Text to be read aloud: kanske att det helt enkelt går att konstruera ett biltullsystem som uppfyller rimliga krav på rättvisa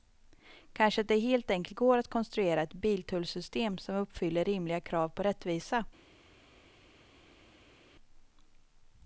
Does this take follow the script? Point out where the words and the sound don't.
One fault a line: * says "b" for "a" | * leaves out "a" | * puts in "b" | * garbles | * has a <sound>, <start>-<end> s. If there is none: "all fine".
all fine